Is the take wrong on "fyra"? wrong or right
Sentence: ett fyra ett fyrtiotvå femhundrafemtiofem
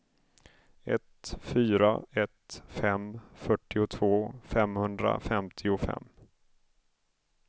right